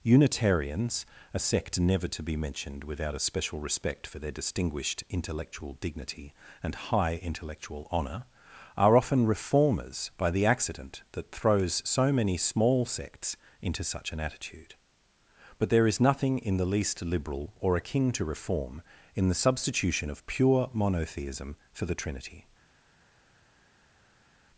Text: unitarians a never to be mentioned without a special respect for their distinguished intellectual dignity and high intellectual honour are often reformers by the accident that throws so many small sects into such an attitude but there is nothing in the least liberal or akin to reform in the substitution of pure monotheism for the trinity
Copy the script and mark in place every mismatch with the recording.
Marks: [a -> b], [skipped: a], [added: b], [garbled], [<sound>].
unitarians a [added: sect] never to be mentioned without a special respect for their distinguished intellectual dignity and high intellectual honour are often reformers by the accident that throws so many small sects into such an attitude but there is nothing in the least liberal or akin to reform in the substitution of pure monotheism for the trinity